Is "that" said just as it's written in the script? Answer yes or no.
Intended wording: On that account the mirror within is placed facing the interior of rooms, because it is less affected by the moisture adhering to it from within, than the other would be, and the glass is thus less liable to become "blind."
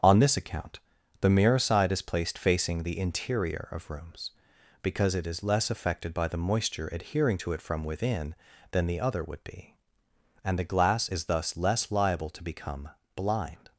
no